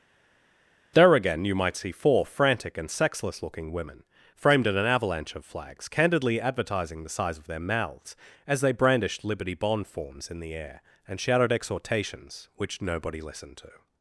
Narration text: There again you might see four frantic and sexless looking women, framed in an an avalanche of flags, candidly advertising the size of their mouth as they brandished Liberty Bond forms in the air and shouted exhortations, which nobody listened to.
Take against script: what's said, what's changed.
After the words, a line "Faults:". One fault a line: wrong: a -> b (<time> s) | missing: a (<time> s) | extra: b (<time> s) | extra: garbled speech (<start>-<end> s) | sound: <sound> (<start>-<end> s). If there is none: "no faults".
There again you might see four frantic and sexless looking women, framed in an avalanche of flags, candidly advertising the size of their mouths as they brandished Liberty Bond forms in the air and shouted exhortations, which nobody listened to.
Faults:
missing: an (4.9 s)
wrong: mouth -> mouths (7.6 s)